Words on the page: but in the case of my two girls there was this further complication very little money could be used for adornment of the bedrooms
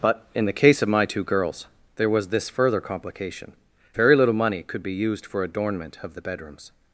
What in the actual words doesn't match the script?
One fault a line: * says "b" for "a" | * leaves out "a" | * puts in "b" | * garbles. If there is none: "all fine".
all fine